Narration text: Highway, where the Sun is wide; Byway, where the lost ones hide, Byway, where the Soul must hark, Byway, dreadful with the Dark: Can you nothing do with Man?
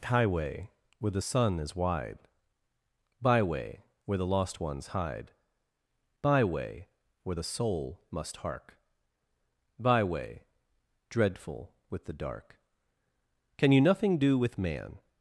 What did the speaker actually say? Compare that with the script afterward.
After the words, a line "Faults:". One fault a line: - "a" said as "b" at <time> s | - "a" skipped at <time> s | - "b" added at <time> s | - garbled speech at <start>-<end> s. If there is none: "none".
Highway, where the Sun is wide; Byway, where the lost ones hide, Byway, where the Soul must hark, Byway, dreadful with the Dark: Can you nothing do with Man?
Faults:
none